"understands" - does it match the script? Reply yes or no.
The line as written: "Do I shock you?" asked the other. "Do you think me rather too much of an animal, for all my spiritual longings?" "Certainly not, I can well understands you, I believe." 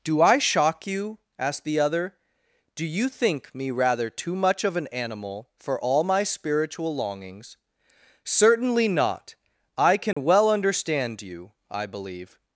no